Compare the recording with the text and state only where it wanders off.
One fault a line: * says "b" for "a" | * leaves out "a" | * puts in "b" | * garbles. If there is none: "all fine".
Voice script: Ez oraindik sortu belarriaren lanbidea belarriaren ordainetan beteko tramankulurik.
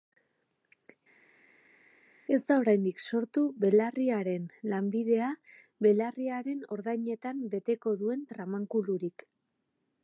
* puts in "da"
* puts in "duen"